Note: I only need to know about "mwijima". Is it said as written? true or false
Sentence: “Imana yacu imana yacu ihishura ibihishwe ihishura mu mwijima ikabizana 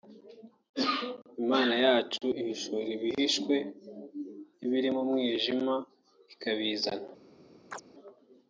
true